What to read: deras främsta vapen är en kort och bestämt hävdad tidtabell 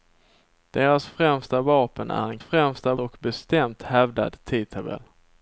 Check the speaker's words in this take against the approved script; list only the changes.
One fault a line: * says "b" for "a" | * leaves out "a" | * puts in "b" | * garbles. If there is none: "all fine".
* says "främsta" for "kort"